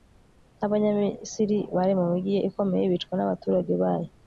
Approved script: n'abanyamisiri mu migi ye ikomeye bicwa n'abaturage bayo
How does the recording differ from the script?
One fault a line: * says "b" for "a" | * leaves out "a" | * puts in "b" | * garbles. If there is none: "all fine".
* puts in "bari"